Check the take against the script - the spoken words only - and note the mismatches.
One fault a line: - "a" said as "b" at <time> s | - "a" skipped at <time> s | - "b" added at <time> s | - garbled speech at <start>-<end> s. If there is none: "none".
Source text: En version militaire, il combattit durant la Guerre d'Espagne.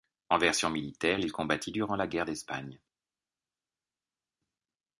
none